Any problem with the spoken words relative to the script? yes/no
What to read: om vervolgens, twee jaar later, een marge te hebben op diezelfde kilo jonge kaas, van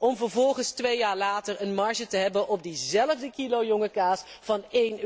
no